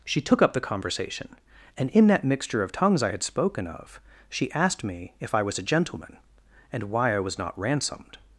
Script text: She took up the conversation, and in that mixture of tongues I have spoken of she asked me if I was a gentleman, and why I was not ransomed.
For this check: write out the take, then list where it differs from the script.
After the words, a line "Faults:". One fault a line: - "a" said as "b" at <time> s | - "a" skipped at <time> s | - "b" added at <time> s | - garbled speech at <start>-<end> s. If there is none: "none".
She took up the conversation, and in that mixture of tongues I had spoken of she asked me if I was a gentleman, and why I was not ransomed.
Faults:
- "have" said as "had" at 3.1 s